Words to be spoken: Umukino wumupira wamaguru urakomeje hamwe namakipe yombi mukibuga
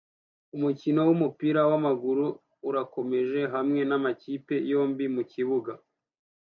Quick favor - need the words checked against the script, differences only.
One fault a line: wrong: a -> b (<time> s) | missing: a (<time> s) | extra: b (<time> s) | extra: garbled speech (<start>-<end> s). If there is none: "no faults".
no faults